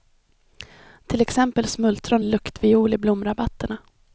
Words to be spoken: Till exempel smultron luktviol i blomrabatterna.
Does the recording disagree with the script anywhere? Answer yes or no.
no